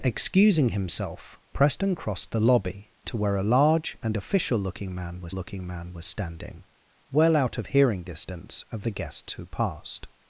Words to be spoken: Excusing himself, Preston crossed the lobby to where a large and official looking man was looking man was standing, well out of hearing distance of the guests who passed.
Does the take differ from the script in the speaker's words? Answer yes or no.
no